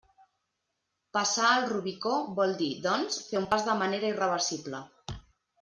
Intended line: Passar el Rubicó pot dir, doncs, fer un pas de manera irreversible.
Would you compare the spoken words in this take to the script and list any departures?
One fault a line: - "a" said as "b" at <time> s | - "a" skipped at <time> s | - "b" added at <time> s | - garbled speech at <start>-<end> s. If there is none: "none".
- "pot" said as "vol" at 2.4 s